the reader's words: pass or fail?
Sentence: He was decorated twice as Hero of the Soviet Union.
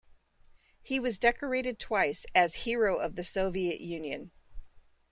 pass